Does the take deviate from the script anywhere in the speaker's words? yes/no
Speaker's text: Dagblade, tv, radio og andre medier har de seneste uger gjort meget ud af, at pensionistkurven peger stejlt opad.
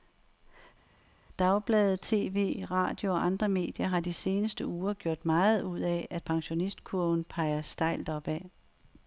no